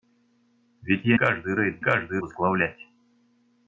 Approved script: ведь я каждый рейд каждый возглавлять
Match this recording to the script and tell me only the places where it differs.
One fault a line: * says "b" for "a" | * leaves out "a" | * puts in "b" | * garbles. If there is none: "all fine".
all fine